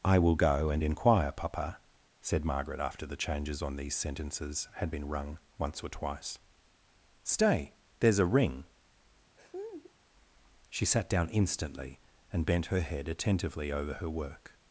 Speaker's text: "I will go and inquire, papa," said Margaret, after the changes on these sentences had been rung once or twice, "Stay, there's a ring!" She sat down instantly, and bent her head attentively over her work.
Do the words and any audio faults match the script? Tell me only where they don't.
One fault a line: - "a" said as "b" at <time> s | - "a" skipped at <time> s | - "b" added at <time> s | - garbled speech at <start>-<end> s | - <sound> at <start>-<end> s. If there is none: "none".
- laugh at 9.4-9.9 s